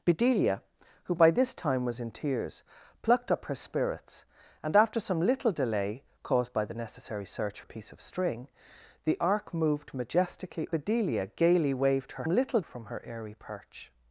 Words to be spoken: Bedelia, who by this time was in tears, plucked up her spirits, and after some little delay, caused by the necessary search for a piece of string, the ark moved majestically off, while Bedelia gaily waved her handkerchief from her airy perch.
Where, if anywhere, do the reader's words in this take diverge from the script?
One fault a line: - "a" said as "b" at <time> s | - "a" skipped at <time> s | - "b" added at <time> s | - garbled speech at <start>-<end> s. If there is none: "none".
- "for" skipped at 7.6 s
- "off while" skipped at 10.7 s
- "handkerchief" said as "little" at 12.3 s